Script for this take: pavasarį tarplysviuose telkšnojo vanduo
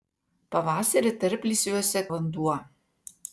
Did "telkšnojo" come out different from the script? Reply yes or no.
yes